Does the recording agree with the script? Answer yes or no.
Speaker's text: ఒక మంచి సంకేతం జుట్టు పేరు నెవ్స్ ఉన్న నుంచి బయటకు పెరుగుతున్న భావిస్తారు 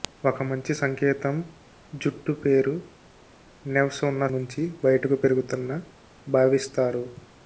yes